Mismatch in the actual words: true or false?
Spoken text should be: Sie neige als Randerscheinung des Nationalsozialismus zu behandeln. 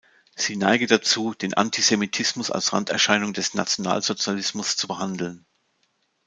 true